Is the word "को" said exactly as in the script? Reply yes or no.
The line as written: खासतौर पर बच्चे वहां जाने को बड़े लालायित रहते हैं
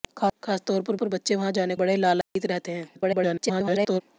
no